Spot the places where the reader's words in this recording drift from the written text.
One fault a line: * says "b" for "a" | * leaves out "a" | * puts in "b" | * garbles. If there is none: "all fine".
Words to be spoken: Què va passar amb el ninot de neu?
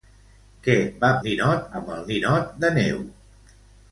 * says "ninot" for "passar"